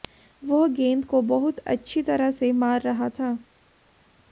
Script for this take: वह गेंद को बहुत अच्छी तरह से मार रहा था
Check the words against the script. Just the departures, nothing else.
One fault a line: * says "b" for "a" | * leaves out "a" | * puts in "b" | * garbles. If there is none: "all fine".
all fine